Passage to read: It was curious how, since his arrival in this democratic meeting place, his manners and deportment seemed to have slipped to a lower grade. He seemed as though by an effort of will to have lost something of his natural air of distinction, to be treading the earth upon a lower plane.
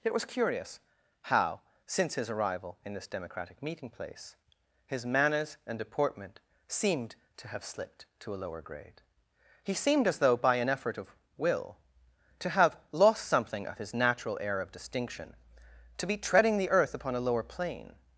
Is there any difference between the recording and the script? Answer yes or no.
no